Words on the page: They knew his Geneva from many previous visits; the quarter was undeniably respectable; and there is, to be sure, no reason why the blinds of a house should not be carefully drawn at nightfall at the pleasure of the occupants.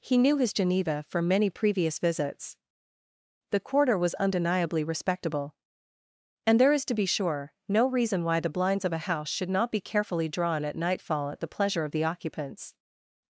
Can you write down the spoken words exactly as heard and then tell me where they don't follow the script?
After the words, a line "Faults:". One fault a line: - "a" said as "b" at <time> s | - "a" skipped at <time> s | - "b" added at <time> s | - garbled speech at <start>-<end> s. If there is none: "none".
He knew his Geneva from many previous visits; the quarter was undeniably respectable; and there is, to be sure, no reason why the blinds of a house should not be carefully drawn at nightfall at the pleasure of the occupants.
Faults:
- "They" said as "He" at 0.0 s